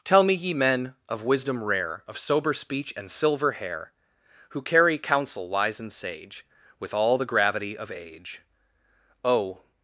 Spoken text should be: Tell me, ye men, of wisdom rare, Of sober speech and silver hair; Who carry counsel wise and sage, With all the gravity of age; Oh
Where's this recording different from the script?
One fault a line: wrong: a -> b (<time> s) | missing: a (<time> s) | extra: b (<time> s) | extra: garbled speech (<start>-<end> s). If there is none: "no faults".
no faults